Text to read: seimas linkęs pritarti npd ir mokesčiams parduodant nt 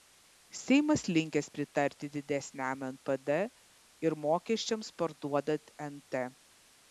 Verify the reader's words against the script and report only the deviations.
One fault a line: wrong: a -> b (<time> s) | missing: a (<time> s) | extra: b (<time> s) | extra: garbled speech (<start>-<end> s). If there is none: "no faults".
extra: didesniam (2.2 s)